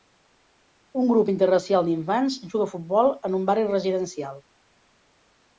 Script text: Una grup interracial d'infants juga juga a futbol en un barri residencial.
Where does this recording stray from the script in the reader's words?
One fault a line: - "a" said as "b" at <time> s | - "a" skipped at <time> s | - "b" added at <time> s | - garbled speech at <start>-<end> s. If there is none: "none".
- "Una" said as "Un" at 1.0 s
- "juga" skipped at 2.7 s